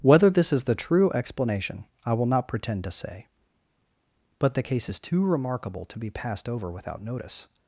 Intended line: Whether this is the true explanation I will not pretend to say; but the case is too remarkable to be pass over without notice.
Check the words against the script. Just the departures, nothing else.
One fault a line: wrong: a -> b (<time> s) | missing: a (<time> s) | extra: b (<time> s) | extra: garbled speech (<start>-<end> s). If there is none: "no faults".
wrong: pass -> passed (6.1 s)